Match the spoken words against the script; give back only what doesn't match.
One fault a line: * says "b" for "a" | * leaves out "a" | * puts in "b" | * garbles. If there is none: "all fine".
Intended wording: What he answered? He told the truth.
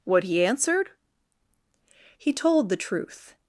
all fine